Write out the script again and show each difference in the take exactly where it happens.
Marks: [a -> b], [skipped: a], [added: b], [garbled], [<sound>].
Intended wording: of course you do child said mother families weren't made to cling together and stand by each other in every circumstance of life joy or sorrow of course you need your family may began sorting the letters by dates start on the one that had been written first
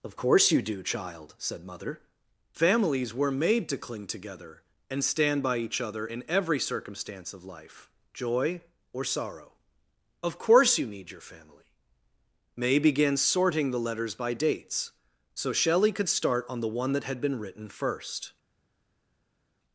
of course you do child said mother families [weren't -> were] made to cling together and stand by each other in every circumstance of life joy or sorrow of course you need your family may began sorting the letters by dates [added: so shelley could] start on the one that had been written first